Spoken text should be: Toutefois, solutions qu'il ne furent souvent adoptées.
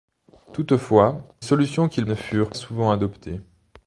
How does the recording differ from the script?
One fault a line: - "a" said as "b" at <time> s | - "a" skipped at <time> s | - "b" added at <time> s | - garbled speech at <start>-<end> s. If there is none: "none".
none